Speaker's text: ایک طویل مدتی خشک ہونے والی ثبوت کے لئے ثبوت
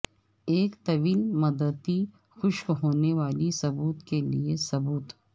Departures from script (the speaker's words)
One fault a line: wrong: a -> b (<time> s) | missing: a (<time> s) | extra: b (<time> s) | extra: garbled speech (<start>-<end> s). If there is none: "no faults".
no faults